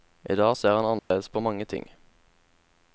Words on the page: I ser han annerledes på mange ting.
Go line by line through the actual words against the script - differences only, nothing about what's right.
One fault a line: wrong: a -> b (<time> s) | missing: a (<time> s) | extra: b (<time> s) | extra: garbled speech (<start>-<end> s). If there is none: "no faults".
extra: dag (0.3 s)